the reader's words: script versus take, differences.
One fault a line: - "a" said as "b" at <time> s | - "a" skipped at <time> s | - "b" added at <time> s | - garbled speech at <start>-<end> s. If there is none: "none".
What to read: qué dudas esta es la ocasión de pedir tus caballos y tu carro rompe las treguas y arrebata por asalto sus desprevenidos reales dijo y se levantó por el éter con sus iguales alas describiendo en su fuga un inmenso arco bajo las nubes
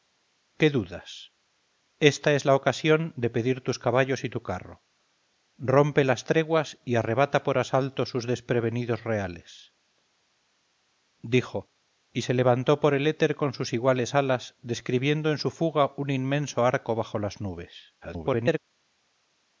- garbled speech at 18.0-18.6 s